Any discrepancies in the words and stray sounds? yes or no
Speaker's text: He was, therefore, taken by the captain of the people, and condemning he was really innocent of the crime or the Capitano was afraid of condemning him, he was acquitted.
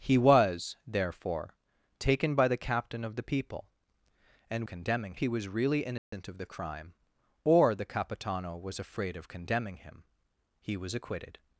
yes